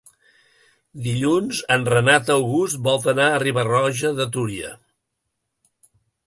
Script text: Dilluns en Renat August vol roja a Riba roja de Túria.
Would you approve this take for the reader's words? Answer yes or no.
no